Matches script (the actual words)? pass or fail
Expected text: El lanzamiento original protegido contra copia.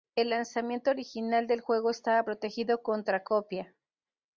fail